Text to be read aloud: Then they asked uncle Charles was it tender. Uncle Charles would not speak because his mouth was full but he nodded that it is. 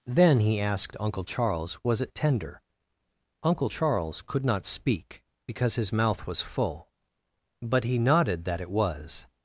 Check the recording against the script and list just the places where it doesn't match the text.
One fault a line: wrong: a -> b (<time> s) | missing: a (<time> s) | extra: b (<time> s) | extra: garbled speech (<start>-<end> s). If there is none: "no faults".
wrong: they -> he (0.4 s)
wrong: would -> could (4.2 s)
wrong: is -> was (8.7 s)